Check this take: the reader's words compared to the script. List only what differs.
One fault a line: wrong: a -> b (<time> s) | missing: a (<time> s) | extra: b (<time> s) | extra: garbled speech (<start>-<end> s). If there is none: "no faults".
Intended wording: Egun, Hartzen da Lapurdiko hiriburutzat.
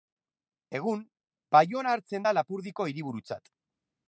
extra: Baiona (1.6 s)